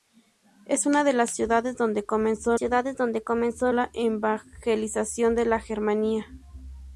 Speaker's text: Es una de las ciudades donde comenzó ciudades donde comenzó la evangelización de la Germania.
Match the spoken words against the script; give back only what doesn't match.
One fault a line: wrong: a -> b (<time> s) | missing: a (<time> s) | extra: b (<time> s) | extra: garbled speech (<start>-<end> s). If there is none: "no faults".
no faults